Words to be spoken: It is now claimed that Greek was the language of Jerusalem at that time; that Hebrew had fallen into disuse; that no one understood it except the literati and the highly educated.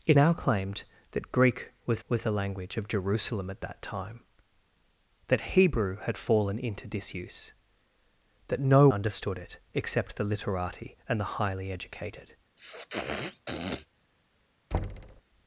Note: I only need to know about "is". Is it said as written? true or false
false